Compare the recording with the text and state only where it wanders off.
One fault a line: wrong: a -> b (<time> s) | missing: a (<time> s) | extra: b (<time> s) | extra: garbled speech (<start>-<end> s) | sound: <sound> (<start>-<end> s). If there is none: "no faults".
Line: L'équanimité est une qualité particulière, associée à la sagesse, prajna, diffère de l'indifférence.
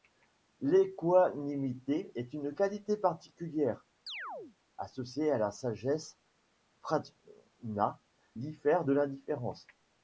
sound: chirp (4.1-4.6 s)